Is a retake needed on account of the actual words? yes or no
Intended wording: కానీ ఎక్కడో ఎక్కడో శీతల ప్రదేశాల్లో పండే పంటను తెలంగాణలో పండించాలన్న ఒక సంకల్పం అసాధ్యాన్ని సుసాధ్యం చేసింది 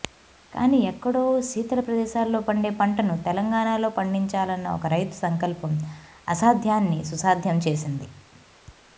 yes